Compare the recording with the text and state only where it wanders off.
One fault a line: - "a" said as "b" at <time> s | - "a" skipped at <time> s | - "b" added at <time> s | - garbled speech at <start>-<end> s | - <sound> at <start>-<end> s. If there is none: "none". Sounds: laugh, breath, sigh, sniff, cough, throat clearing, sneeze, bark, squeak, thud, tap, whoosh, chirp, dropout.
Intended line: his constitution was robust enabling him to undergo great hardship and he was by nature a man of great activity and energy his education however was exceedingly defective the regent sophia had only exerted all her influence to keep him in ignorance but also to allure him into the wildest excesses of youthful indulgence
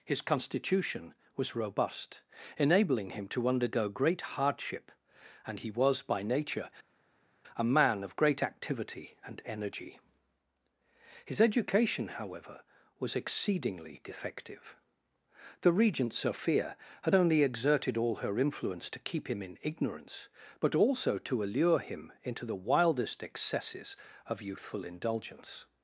none